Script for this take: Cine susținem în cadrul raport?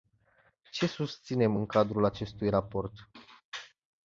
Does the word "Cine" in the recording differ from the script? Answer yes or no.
yes